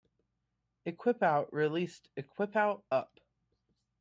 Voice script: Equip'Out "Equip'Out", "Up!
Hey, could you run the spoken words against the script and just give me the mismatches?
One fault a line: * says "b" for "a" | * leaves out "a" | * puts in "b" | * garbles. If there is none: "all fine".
* puts in "released"